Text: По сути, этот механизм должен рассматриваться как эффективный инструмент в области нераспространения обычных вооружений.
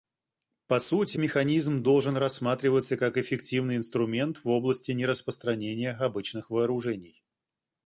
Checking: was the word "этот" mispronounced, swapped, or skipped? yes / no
yes